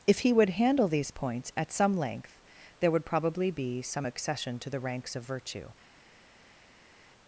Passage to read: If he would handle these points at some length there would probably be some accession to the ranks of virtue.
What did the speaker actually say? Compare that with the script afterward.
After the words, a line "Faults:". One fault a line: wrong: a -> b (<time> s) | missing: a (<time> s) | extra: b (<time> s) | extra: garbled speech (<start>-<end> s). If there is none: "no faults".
If he would handle these points at some length there would probably be some accession to the ranks of virtue.
Faults:
no faults